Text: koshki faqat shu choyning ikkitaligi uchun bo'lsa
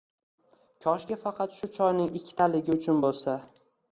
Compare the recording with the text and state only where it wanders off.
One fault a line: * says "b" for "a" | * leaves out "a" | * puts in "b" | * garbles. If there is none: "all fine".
all fine